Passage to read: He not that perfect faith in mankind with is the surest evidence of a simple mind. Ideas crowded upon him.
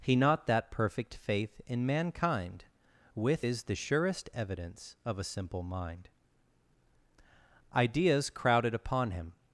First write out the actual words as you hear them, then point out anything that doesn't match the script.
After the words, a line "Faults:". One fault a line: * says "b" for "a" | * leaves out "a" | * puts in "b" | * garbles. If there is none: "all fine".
He not that perfect faith in mankind with is the surest evidence of a simple mind. Ideas crowded upon him.
Faults:
all fine